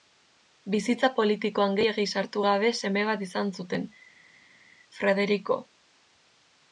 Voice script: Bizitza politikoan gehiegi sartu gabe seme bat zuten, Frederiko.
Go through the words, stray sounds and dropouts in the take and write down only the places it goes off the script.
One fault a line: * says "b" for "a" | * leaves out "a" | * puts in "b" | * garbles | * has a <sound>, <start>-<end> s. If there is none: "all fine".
* puts in "izan"